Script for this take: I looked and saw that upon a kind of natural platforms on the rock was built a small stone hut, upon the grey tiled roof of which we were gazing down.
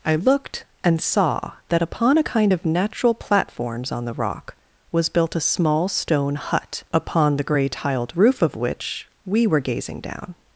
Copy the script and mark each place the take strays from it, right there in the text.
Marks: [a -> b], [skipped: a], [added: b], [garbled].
I looked and saw that upon a kind of natural platforms on the rock was built a small stone hut, upon the grey tiled roof of which we were gazing down.